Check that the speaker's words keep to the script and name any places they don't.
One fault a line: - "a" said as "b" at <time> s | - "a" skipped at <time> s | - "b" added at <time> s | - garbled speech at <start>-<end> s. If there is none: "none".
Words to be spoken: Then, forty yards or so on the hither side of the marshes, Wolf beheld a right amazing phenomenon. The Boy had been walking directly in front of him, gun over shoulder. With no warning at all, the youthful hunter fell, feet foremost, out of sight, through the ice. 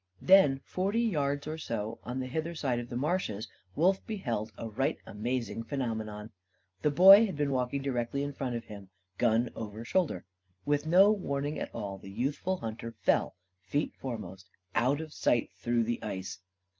none